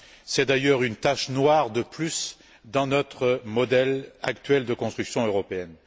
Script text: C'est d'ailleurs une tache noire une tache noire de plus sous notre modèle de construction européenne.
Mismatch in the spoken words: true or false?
true